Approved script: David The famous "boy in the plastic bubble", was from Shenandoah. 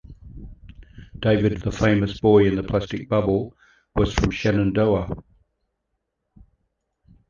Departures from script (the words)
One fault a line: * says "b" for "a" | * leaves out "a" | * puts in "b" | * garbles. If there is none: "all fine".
all fine